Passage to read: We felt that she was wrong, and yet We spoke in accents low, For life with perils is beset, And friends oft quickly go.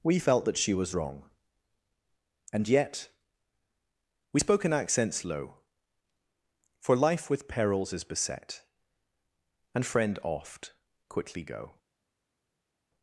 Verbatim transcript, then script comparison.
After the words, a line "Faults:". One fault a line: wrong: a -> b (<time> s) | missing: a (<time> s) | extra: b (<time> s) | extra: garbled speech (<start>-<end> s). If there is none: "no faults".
We felt that she was wrong, and yet We spoke in accents low, For life with perils is beset, And friend oft quickly go.
Faults:
wrong: friends -> friend (9.8 s)